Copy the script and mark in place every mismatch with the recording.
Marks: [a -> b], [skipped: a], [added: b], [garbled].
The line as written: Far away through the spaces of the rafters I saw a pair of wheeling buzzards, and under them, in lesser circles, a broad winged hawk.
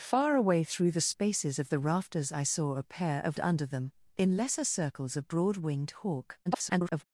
Far away through the spaces of the rafters I saw a pair of [skipped: wheeling buzzards, and] under them, in lesser circles, a broad winged hawk. [garbled]